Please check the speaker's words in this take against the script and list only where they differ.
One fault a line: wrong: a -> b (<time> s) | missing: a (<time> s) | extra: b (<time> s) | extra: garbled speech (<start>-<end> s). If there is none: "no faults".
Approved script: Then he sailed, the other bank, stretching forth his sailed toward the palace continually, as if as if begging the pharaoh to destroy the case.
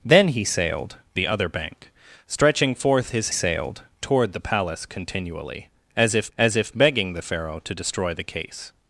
no faults